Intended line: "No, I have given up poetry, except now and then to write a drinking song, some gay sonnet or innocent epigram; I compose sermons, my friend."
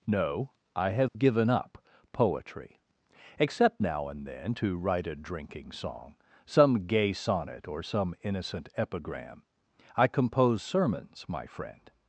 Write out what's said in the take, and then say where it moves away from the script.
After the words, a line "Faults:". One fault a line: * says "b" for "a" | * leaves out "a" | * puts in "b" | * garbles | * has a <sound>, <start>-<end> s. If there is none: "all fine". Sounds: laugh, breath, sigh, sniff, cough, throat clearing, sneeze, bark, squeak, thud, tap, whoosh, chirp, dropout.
"No, I have given up poetry, except now and then to write a drinking song, some gay sonnet or some innocent epigram; I compose sermons, my friend."
Faults:
* has a dropout, 1.1-1.2 s
* puts in "some"